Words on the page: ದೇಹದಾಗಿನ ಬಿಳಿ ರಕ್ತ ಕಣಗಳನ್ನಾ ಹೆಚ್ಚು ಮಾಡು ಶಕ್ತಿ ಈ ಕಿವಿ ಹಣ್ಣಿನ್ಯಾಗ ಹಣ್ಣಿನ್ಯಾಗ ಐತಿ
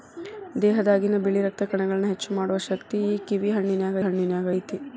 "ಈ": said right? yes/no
yes